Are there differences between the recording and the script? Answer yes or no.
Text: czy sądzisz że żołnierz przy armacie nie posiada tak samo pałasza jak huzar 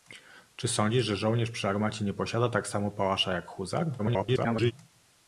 yes